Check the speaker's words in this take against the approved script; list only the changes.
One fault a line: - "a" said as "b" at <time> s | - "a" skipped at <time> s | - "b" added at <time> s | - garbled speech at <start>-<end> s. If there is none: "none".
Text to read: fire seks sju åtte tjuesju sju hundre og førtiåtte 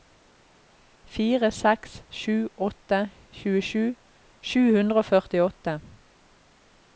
none